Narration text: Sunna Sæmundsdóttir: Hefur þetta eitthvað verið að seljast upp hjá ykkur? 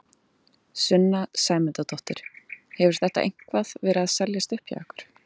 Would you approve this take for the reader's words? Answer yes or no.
yes